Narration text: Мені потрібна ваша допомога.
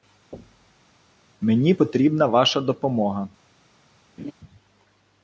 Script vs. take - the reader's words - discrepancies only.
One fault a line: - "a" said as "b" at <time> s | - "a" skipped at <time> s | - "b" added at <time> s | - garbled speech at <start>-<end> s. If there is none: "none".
none